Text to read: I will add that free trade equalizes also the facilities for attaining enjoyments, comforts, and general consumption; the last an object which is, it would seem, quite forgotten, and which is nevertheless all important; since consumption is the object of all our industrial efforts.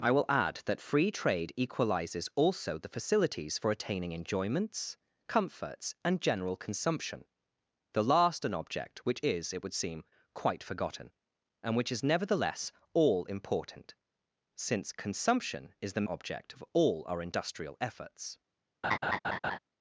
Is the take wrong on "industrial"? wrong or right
right